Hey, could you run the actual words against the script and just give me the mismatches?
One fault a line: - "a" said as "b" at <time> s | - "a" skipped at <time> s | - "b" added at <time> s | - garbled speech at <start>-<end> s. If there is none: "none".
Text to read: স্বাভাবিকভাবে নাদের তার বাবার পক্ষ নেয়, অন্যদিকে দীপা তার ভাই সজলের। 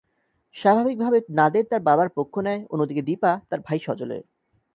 none